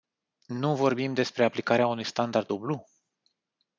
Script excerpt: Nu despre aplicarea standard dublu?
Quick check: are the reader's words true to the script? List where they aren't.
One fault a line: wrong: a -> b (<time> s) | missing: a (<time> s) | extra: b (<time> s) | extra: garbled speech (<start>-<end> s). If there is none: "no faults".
extra: vorbim (0.8 s)
extra: unui (1.9 s)